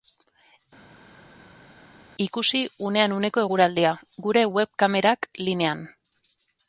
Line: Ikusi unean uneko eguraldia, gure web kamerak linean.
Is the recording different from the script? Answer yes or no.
no